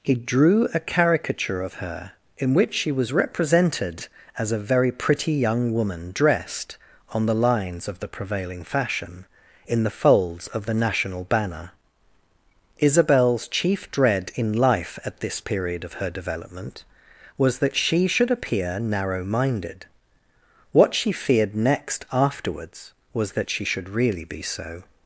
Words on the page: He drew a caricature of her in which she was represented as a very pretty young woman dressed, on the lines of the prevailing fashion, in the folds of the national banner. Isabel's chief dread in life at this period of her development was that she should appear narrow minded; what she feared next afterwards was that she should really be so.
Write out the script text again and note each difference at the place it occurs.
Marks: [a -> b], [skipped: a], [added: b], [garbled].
He drew a caricature of her in which she was represented as a very pretty young woman dressed, on the lines of the prevailing fashion, in the folds of the national banner. Isabel's chief dread in life at this period of her development was that she should appear narrow minded; what she feared next afterwards was that she should really be so.